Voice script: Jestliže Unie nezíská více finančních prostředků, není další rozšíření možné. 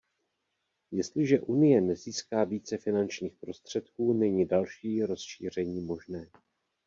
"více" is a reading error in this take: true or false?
false